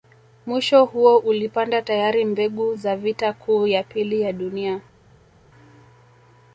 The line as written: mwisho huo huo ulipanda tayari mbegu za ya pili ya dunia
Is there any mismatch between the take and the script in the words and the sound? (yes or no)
yes